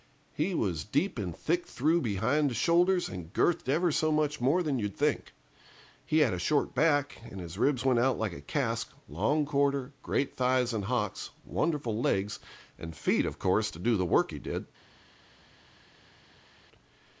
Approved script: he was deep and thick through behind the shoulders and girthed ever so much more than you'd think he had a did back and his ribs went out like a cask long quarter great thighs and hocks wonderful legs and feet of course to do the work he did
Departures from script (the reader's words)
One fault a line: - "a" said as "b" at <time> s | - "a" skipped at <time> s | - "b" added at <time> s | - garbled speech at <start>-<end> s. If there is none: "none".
- "did" said as "short" at 6.4 s